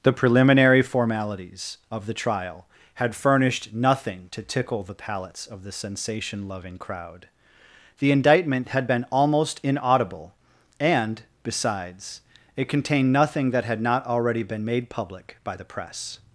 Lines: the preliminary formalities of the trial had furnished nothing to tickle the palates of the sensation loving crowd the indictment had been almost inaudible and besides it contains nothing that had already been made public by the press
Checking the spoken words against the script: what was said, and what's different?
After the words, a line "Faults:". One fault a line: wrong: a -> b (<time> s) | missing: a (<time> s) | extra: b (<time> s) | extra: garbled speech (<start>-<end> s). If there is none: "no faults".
the preliminary formalities of the trial had furnished nothing to tickle the palates of the sensation loving crowd the indictment had been almost inaudible and besides it contained nothing that had not already been made public by the press
Faults:
wrong: contains -> contained (12.7 s)
extra: not (13.8 s)